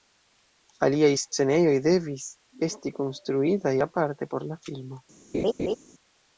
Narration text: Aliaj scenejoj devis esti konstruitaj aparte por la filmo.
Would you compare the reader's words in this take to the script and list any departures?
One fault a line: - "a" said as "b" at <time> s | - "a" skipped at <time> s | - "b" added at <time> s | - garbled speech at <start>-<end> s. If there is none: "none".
none